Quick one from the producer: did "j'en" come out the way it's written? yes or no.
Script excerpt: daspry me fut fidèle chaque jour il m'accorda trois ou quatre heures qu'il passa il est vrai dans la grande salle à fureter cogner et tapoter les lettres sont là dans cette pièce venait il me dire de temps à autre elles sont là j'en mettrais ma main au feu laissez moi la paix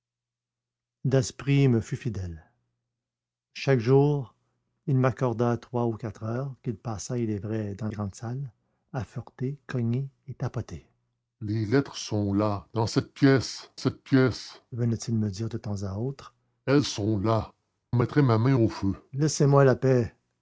no